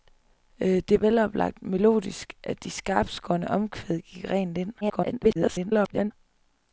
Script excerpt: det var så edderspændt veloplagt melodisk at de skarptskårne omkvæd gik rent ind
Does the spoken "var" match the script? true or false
false